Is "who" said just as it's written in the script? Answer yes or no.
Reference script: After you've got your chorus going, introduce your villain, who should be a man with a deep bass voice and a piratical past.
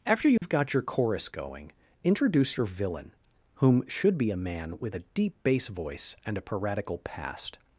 no